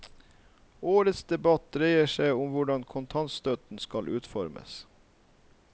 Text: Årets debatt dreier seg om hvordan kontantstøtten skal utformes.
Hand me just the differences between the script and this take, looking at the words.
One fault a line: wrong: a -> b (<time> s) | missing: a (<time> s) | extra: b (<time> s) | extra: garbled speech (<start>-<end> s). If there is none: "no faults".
no faults